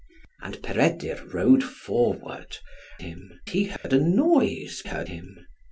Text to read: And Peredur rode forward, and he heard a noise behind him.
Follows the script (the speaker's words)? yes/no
no